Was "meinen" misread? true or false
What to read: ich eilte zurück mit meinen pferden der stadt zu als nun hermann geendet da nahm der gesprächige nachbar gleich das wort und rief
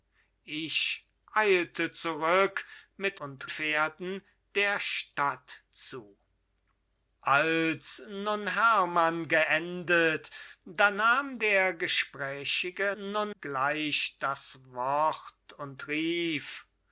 true